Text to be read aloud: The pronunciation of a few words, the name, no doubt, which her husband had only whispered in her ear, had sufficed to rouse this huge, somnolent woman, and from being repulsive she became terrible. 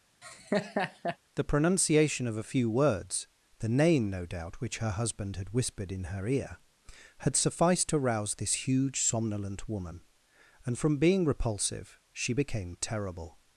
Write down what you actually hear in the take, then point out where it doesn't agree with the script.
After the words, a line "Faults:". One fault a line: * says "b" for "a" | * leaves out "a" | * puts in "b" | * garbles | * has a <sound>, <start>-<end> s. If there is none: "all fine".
The pronunciation of a few words, the name, no doubt, which her husband had whispered in her ear, had sufficed to rouse this huge, somnolent woman, and from being repulsive she became terrible.
Faults:
* has a laugh, 0.2-1.2 s
* leaves out "only"